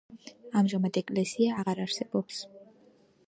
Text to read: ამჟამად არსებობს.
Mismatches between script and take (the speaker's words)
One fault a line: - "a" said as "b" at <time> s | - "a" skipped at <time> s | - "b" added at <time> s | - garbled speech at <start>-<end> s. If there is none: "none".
- "ეკლესია აღარ" added at 1.0 s